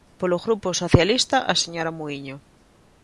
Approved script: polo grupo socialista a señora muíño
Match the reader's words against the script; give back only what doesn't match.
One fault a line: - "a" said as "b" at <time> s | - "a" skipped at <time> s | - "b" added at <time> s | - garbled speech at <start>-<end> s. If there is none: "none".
none